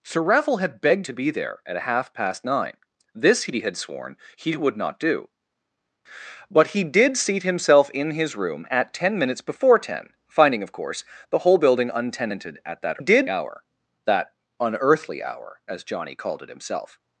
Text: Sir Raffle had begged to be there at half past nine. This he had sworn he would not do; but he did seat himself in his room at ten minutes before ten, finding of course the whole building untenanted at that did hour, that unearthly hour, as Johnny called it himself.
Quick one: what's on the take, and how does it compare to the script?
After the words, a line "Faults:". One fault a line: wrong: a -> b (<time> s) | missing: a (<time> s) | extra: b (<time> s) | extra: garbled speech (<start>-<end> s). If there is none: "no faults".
Sir Raffle had begged to be there at half past nine. This he had sworn he would not do; but he did seat himself in his room at ten minutes before ten, finding of course the whole building untenanted at that did hour, that unearthly hour, as Johnny called it himself.
Faults:
no faults